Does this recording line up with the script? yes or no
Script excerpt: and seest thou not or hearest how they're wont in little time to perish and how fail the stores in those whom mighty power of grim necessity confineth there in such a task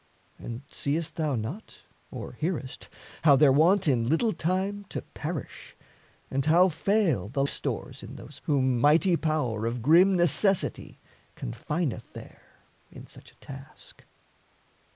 yes